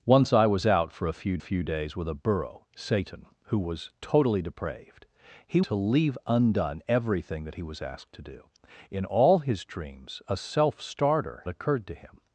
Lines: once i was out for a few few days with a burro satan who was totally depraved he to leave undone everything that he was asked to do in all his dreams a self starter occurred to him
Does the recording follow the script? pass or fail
pass